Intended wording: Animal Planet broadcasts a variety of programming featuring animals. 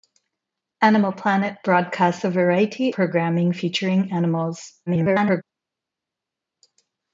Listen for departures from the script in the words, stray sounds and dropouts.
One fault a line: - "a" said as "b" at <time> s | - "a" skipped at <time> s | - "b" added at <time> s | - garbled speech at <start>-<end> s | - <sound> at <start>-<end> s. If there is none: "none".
- "of" skipped at 3.0 s
- garbled speech at 4.9-5.4 s